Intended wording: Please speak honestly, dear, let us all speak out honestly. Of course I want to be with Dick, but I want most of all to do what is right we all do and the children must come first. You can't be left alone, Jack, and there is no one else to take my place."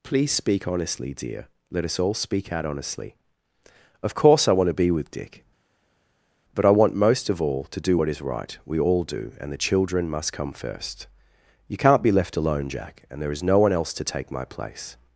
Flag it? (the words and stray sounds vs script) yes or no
no